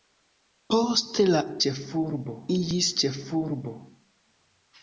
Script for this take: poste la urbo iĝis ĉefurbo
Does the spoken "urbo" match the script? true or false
false